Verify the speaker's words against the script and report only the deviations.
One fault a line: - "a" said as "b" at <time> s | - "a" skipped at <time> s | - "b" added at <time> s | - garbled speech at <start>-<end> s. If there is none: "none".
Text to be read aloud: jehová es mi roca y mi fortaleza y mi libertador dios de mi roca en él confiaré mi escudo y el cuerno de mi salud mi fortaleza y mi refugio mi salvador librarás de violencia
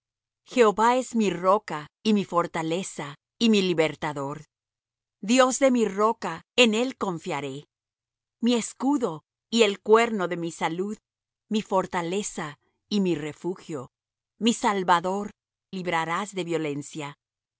none